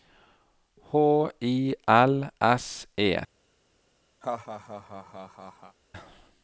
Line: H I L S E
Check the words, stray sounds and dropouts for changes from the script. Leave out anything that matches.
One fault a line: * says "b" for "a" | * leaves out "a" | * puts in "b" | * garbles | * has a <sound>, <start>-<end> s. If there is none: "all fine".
* has a laugh, 4.2-5.8 s